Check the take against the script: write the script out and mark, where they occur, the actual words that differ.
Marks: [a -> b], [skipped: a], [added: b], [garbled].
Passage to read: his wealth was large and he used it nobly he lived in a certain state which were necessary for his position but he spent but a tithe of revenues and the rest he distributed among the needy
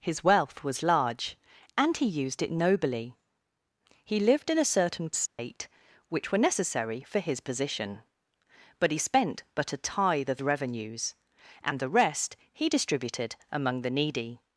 his wealth was large and he used it nobly he lived in a certain state which were necessary for his position but he spent but a tithe of revenues and the rest he distributed among the needy